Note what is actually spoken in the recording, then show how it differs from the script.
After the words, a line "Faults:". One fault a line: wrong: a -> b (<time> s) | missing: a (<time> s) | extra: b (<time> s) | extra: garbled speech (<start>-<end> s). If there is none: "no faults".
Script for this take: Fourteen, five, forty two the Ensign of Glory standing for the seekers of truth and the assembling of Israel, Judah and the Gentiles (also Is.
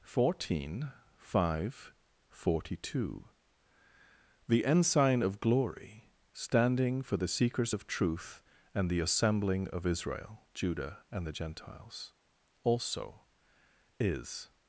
Fourteen, five, forty two the Ensign of Glory standing for the seekers of truth and the assembling of Israel, Judah and the Gentiles (also Is.
Faults:
no faults